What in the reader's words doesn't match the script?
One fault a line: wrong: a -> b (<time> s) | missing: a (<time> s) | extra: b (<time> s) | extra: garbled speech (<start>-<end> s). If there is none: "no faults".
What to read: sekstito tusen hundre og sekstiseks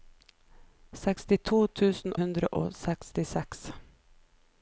no faults